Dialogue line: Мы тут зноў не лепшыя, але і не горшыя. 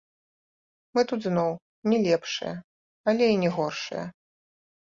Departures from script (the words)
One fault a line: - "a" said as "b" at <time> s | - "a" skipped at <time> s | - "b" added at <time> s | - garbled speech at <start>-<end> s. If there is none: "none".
none